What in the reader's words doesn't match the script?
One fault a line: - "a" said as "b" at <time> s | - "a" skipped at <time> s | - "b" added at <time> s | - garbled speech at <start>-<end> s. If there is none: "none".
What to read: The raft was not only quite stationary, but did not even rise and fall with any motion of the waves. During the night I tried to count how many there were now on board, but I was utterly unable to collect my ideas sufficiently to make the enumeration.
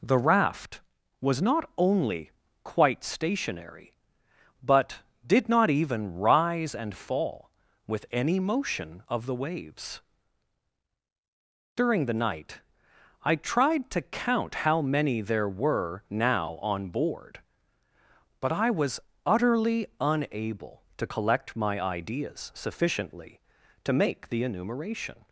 none